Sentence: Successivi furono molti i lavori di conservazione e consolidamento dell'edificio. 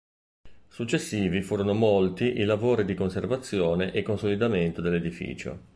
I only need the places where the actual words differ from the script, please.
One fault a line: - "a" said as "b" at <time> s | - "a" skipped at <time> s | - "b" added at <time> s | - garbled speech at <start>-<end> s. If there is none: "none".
none